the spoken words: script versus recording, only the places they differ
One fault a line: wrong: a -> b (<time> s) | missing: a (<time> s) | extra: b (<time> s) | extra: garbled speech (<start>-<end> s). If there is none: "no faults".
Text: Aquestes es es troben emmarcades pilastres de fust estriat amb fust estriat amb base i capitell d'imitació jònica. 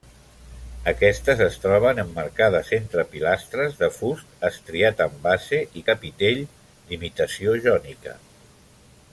missing: es (1.6 s)
extra: entre (2.8 s)
missing: fust estriat amb (5.2 s)